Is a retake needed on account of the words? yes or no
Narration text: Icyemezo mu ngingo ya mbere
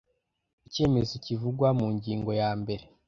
yes